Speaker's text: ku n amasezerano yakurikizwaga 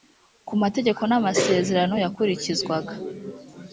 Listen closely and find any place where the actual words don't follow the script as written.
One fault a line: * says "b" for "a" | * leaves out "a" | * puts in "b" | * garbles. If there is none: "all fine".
* puts in "mategeko"